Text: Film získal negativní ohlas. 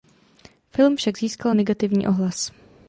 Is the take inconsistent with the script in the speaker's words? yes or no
yes